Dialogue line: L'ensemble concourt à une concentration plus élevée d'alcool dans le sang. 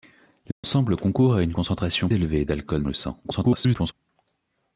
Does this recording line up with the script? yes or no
no